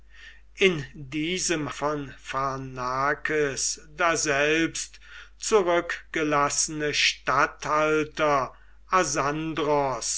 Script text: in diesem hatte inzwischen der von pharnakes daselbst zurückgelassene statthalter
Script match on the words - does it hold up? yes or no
no